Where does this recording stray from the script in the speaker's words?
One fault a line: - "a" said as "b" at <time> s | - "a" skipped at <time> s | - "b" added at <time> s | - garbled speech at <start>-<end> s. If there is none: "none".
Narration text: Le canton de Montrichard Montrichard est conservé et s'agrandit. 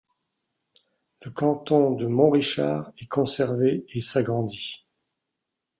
- "Montrichard" skipped at 2.9 s